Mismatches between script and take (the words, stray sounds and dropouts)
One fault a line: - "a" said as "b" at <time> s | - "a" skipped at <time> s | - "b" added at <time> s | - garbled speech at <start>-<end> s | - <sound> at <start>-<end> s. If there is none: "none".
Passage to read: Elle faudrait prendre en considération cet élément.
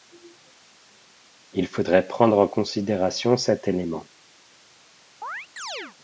- "Elle" said as "Il" at 1.5 s
- chirp at 5.2-6.0 s